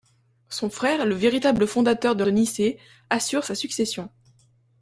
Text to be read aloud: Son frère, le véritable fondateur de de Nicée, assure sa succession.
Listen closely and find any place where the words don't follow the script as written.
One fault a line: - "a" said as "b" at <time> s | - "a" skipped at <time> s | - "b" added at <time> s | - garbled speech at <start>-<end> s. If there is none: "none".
none